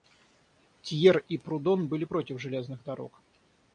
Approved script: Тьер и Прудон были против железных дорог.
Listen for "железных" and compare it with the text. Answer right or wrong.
right